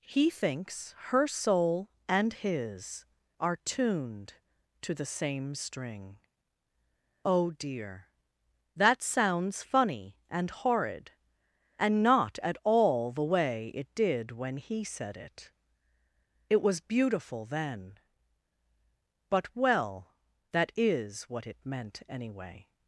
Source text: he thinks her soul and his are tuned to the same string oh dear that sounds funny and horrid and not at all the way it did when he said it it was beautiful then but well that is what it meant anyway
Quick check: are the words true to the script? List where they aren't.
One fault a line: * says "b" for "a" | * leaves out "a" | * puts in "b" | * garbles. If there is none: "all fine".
all fine